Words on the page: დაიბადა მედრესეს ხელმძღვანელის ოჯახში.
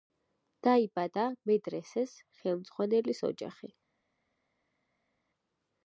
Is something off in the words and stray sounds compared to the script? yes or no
no